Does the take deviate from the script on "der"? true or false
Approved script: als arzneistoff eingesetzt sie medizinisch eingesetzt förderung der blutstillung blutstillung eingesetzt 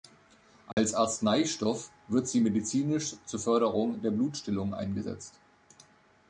false